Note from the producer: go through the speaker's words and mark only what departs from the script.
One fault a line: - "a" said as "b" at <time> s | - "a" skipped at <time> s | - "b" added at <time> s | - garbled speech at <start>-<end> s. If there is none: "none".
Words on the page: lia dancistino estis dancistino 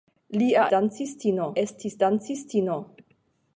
none